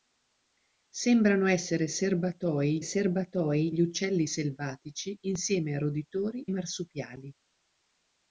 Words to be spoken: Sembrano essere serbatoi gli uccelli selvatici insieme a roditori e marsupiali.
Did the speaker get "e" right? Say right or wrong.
wrong